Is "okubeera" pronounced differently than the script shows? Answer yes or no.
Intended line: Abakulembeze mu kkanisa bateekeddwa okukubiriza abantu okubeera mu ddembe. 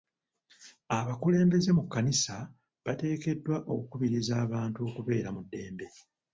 no